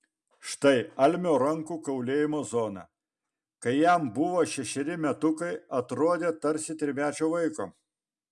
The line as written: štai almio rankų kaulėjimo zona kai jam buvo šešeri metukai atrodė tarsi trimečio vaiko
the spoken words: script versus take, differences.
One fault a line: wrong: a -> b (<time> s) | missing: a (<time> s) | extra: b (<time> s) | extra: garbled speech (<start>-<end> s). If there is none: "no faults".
no faults